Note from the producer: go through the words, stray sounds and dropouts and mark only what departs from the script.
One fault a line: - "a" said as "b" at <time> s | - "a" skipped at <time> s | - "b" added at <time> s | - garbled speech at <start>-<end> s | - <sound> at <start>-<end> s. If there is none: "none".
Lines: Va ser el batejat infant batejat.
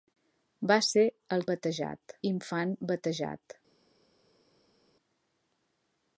none